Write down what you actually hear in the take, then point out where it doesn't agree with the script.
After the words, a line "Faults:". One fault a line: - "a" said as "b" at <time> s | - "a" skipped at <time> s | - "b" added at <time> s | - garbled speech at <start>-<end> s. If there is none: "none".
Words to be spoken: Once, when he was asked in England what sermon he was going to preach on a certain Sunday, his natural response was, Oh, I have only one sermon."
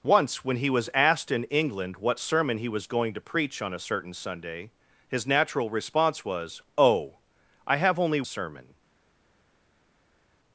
Once, when he was asked in England what sermon he was going to preach on a certain Sunday, his natural response was, Oh, I have only sermon."
Faults:
- "one" skipped at 8.2 s